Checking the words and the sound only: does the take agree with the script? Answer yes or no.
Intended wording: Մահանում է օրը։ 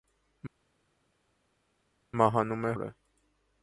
yes